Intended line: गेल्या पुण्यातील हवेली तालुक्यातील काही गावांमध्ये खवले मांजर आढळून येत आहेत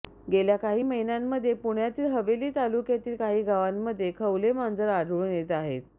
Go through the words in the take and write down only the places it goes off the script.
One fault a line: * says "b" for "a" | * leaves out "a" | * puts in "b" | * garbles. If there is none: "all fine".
* puts in "काही महिन्यांमध्ये"